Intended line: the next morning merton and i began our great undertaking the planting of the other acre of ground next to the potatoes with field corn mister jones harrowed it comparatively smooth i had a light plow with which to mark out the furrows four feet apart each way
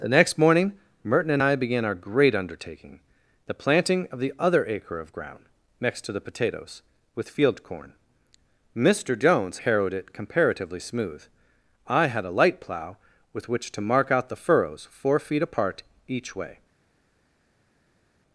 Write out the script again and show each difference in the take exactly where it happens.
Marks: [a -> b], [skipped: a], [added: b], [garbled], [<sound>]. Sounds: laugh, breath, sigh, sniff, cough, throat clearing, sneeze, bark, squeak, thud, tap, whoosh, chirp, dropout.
the next morning merton and i began our great undertaking the planting of the other acre of ground next to the potatoes with field corn mister jones harrowed it comparatively smooth i had a light plow with which to mark out the furrows four feet apart each way